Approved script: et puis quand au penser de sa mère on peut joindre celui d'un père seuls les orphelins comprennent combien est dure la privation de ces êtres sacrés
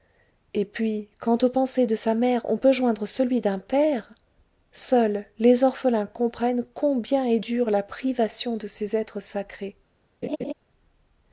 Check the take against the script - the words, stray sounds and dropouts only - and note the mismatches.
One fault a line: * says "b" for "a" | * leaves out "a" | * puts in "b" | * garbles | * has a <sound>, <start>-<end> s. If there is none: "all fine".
* has a laugh, 10.2-10.5 s